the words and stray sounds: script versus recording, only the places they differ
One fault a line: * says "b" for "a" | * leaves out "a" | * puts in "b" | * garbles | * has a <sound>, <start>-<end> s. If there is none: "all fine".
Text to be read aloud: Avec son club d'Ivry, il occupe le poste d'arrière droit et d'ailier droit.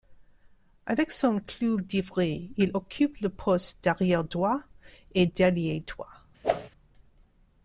* has a whoosh, 6.4-6.7 s